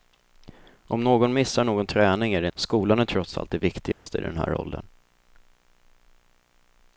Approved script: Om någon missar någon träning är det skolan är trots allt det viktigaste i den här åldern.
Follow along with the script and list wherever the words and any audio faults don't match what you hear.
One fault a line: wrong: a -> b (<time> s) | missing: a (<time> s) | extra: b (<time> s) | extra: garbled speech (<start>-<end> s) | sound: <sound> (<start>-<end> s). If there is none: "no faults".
sound: dropout (3.9-4.1 s)